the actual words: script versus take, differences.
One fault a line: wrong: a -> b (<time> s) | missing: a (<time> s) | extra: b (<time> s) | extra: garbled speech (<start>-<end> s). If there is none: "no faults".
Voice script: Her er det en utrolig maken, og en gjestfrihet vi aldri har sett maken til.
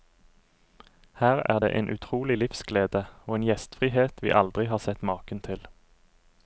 wrong: maken -> livsglede (2.4 s)